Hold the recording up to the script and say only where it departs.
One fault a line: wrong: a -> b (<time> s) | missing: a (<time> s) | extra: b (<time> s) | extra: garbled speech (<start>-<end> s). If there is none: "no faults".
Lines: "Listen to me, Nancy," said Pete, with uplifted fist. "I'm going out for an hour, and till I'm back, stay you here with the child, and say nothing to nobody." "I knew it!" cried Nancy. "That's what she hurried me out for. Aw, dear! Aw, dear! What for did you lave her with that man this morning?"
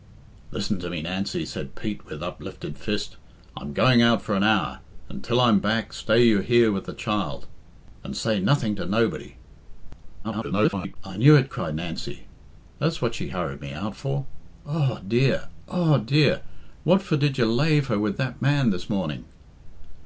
extra: garbled speech (10.2-11.0 s)